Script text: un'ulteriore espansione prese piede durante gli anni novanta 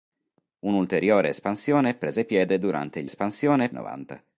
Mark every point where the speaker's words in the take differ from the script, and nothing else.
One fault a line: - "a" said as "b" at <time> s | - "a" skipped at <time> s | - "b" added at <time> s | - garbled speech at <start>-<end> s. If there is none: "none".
- "anni" said as "espansione" at 3.0 s